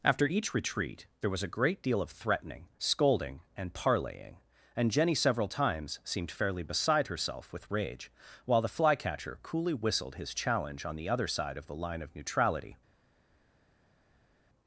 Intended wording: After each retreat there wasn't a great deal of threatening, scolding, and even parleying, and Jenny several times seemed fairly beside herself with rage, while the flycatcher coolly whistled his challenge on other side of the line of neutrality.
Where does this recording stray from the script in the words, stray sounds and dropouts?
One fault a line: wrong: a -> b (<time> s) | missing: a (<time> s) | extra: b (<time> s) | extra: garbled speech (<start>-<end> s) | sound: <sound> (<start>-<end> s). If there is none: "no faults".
wrong: wasn't -> was (1.3 s)
missing: even (3.7 s)
extra: the (11.0 s)